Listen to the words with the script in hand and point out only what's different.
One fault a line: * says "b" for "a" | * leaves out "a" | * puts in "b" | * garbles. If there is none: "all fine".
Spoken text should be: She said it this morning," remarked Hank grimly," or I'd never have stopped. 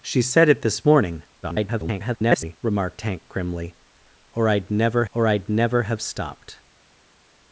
* garbles
* puts in "or I'd never"